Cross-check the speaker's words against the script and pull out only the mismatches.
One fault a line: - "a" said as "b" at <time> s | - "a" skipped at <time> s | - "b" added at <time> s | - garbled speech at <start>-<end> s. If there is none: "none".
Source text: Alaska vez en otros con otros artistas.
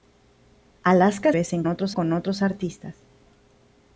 none